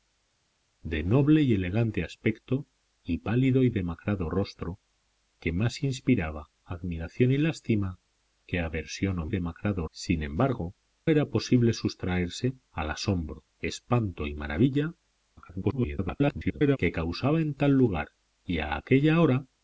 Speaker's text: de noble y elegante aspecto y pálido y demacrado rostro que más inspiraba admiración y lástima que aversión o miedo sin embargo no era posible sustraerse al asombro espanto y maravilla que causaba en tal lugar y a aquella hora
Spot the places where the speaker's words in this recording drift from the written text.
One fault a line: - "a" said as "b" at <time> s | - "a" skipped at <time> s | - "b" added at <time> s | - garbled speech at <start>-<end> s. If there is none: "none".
- "miedo" said as "demacrado" at 9.3 s
- "no" skipped at 10.7 s
- garbled speech at 15.4-16.8 s